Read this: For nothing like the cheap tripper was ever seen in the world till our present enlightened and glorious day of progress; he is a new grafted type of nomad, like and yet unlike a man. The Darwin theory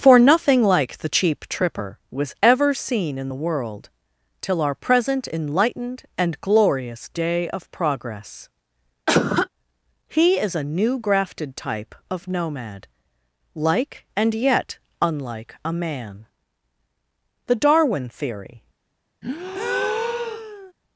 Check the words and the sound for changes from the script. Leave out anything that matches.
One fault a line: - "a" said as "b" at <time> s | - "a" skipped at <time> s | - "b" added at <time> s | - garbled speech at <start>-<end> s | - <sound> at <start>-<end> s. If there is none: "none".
- cough at 9.1-9.5 s
- breath at 19.2-20.7 s